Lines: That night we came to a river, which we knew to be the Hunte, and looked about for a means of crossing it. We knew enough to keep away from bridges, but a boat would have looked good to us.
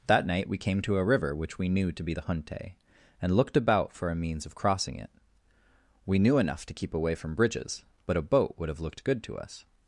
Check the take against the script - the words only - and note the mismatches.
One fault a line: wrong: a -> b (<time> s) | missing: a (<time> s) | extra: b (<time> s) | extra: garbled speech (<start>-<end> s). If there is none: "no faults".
no faults